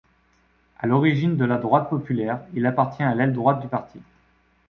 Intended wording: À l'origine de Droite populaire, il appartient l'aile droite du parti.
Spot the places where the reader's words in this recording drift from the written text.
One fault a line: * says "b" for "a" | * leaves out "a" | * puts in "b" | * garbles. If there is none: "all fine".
* puts in "La"
* puts in "à"